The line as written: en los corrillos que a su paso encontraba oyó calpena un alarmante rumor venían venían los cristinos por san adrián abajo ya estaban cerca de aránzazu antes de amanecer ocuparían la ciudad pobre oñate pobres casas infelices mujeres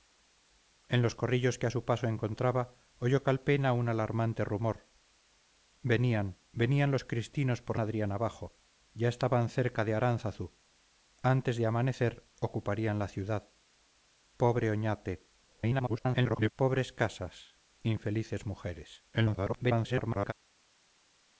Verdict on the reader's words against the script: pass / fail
fail